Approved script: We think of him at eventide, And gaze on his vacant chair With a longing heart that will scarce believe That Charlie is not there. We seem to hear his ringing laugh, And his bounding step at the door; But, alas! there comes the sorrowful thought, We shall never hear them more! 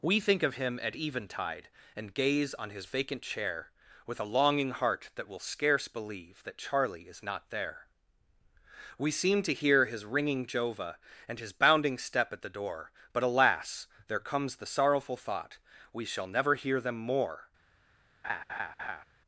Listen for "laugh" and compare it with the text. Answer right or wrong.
wrong